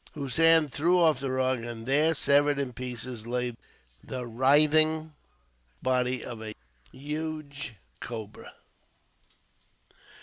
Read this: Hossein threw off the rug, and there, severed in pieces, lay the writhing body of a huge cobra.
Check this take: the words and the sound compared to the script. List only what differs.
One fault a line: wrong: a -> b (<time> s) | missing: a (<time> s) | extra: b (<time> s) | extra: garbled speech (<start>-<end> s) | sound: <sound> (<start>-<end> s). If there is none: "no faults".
no faults